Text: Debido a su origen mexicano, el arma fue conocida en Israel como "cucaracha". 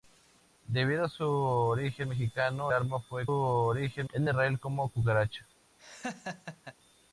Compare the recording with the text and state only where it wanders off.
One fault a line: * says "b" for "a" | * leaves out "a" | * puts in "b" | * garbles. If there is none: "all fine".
* leaves out "el"
* says "origen" for "conocida"